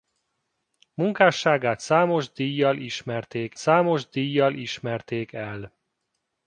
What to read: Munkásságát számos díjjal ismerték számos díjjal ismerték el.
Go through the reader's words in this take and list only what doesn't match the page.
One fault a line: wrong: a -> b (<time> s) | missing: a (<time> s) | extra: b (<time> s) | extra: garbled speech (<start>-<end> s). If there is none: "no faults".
no faults